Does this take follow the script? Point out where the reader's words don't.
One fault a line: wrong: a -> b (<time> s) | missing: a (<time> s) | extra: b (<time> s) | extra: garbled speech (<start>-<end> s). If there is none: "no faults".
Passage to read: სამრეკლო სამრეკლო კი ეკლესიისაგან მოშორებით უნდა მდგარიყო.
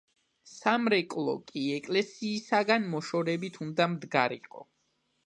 missing: სამრეკლო (1.4 s)